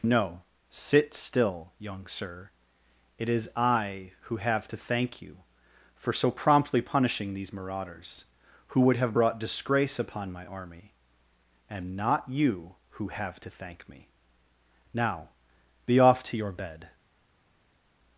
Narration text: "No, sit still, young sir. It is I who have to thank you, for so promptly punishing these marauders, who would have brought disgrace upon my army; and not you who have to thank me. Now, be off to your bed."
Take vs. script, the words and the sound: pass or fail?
pass